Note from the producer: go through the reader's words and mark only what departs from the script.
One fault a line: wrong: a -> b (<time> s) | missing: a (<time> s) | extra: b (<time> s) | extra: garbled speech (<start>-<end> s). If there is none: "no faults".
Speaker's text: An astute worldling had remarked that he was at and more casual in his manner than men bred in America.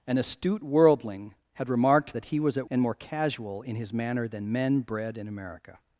no faults